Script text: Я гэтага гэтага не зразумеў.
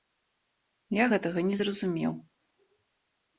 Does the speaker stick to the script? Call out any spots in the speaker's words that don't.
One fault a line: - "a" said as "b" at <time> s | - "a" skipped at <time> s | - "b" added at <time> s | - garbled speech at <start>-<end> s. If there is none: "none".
- "гэтага" skipped at 1.4 s